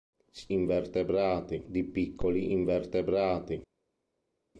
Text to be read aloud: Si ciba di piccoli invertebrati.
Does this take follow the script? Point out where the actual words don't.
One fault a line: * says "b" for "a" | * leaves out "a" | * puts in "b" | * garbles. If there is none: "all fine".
* says "invertebrati" for "ciba"